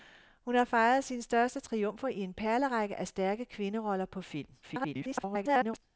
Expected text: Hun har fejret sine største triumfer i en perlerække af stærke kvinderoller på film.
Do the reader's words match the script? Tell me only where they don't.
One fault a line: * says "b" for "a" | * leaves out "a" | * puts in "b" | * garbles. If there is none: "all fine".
* garbles